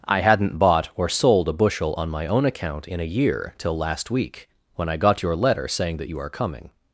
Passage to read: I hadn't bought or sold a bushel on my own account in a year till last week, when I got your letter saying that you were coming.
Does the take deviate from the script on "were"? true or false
true